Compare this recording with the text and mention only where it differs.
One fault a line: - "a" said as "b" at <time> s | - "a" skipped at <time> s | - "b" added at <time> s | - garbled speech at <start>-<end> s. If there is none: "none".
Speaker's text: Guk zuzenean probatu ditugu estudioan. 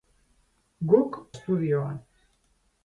- "zuzenean probatu ditugu" skipped at 1.2 s